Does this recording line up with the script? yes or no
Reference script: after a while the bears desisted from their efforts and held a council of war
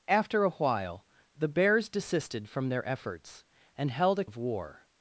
no